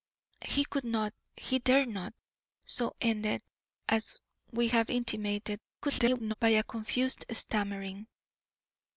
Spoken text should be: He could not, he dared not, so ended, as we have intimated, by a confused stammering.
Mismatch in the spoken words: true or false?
true